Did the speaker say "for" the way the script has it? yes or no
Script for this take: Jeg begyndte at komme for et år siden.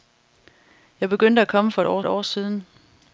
yes